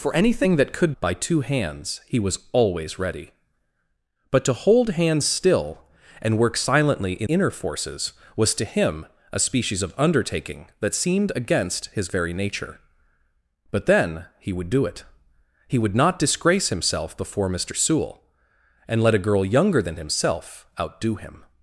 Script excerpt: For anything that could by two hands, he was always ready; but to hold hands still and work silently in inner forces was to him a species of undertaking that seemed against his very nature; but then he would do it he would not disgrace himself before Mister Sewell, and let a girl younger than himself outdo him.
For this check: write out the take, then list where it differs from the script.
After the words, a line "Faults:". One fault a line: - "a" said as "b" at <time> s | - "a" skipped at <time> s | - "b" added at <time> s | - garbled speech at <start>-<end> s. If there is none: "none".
For anything that could by two hands, he was always ready; but to hold hands still and work silently in inner forces was to him a species of undertaking that seemed against his very nature; but then he would do it he would not disgrace himself before Mister Sewell, and let a girl younger than himself outdo him.
Faults:
none